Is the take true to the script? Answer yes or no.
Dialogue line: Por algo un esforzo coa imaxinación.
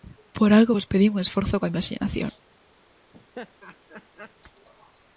no